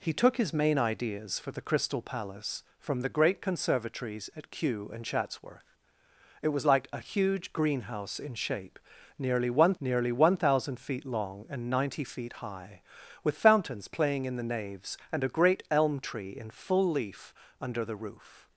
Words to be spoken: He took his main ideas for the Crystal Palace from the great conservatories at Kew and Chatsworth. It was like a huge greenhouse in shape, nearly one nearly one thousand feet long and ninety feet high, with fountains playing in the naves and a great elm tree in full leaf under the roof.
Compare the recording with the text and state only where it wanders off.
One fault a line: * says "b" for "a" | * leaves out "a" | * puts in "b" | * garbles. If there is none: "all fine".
all fine